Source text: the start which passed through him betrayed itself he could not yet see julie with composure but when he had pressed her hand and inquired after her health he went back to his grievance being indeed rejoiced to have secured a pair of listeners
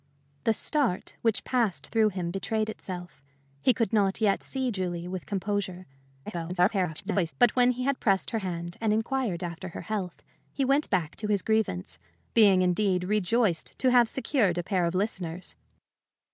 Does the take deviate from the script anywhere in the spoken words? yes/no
yes